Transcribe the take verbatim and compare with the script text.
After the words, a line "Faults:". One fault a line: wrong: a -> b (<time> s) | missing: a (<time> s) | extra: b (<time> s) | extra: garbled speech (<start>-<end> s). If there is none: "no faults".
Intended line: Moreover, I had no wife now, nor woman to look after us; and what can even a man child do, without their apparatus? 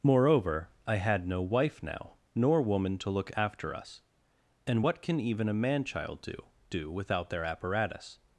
Moreover, I had no wife now, nor woman to look after us; and what can even a man child do do, without their apparatus?
Faults:
extra: do (6.7 s)